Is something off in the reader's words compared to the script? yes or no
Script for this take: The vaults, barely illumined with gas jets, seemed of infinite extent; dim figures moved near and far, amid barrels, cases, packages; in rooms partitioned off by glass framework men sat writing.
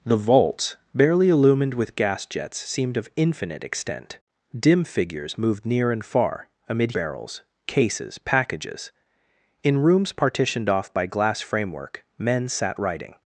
no